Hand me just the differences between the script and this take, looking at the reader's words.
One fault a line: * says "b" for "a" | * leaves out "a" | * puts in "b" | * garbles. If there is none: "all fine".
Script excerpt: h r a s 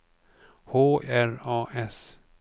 all fine